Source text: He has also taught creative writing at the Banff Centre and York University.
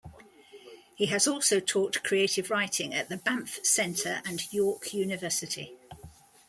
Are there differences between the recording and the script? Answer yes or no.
no